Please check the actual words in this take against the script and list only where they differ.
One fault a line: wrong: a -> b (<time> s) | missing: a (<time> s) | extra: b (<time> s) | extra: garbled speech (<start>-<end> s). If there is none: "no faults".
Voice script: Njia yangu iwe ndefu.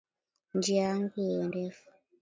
no faults